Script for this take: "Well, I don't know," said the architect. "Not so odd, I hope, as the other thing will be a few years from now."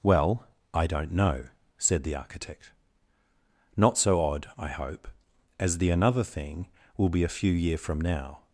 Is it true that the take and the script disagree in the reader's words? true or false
true